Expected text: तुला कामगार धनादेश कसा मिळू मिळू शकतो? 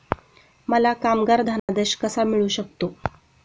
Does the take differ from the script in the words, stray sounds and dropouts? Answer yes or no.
yes